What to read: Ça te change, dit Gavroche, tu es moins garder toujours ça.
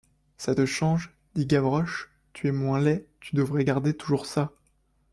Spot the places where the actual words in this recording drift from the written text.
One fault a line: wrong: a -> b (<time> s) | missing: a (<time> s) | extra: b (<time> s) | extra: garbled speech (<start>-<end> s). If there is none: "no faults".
extra: laid tu devrais (2.8 s)